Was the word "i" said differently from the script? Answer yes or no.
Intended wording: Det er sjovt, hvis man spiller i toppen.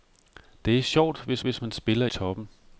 yes